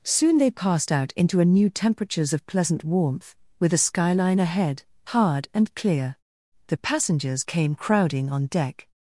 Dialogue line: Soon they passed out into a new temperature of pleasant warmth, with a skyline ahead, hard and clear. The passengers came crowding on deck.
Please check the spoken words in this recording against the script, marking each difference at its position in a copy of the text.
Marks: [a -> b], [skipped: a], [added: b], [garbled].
Soon they passed out into a new [temperature -> temperatures] of pleasant warmth, with a skyline ahead, hard and clear. The passengers came crowding on deck.